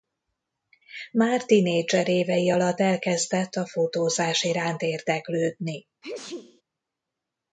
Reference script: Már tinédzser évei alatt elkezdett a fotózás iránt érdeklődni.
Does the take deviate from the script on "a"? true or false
false